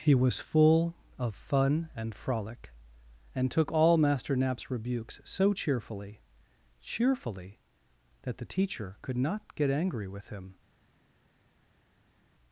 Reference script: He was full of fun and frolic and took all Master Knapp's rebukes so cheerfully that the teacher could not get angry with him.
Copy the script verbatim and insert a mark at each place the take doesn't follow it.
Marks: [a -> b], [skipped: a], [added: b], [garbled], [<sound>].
He was full of fun and frolic and took all Master Knapp's rebukes so cheerfully [added: cheerfully] that the teacher could not get angry with him.